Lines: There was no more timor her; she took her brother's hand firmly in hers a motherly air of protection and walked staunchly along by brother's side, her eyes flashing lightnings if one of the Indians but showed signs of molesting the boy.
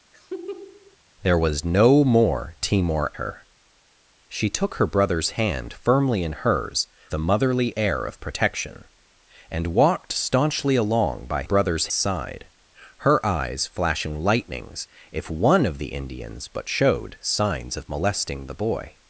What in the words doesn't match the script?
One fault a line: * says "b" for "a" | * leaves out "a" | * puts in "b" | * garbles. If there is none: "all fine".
all fine